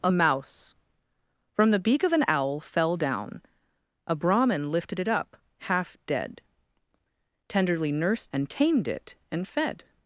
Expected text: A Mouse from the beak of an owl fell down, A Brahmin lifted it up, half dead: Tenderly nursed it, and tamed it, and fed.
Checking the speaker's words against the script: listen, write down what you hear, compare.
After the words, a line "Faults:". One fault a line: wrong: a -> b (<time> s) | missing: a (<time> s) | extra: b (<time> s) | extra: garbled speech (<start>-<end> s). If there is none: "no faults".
A Mouse from the beak of an owl fell down, A Brahmin lifted it up, half dead: Tenderly nursed and tamed it, and fed.
Faults:
missing: it (8.3 s)